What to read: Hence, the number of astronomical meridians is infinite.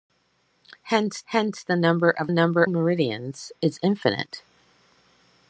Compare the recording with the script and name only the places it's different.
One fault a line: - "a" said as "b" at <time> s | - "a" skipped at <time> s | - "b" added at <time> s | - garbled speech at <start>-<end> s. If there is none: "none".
- "hence" added at 1.3 s
- "astronomical" said as "number" at 2.3 s